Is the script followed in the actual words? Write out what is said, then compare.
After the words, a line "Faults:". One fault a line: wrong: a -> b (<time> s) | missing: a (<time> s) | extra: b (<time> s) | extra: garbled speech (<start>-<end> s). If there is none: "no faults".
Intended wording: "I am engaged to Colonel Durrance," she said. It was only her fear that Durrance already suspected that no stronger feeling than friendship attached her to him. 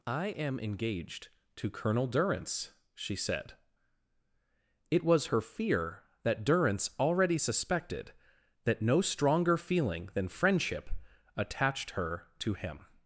"I am engaged to Colonel Durrance," she said. It was her fear that Durrance already suspected that no stronger feeling than friendship attached her to him.
Faults:
missing: only (5.3 s)